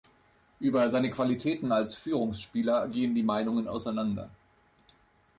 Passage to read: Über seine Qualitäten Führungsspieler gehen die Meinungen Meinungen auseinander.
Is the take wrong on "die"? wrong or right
right